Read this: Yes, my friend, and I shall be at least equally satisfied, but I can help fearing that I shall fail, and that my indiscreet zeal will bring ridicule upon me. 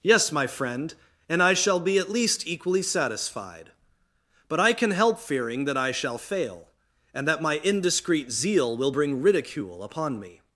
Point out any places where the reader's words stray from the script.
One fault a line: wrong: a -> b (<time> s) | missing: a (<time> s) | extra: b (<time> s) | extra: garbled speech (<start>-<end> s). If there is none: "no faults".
no faults